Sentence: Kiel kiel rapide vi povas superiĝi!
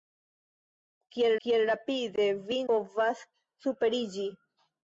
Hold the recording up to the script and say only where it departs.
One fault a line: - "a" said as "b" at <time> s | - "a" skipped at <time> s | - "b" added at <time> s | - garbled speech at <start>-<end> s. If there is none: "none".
none